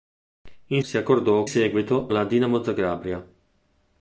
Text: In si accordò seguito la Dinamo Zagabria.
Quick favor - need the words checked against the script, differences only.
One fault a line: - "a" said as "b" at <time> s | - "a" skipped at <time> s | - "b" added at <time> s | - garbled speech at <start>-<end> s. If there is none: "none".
none